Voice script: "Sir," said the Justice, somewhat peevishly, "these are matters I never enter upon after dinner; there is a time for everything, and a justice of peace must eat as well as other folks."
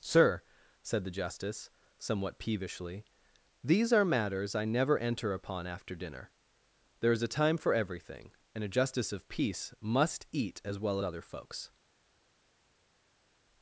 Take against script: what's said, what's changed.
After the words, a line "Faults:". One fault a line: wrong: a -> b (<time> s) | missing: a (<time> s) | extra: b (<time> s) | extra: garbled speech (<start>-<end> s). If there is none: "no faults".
"Sir," said the Justice, somewhat peevishly, "these are matters I never enter upon after dinner; there is a time for everything, and a justice of peace must eat as well other folks."
Faults:
missing: as (11.0 s)